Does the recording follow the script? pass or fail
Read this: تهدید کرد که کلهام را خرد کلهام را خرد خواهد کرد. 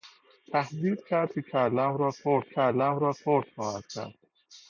pass